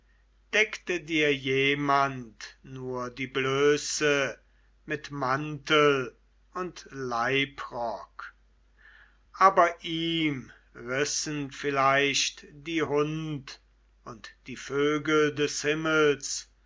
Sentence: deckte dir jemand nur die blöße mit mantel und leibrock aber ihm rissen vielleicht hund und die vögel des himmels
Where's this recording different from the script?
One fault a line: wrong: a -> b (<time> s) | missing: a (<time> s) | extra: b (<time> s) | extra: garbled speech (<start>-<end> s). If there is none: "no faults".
extra: die (12.5 s)